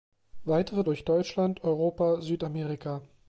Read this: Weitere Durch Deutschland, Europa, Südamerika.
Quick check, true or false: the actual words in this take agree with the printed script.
true